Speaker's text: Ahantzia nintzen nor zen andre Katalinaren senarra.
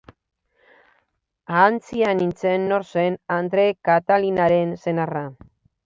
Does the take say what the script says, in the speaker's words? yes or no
yes